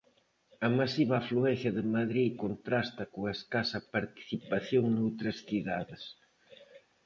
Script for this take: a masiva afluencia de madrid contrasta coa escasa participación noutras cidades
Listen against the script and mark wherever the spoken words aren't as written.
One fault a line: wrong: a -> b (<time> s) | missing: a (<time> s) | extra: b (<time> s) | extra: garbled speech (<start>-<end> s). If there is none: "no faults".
no faults